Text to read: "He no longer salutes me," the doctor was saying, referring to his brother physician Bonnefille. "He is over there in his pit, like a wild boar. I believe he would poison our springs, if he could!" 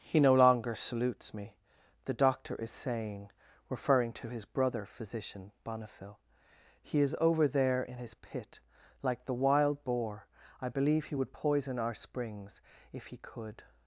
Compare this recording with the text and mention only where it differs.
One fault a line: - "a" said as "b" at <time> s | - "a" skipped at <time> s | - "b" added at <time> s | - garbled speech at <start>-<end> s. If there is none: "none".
- "was" said as "is" at 2.5 s
- "a" said as "the" at 9.2 s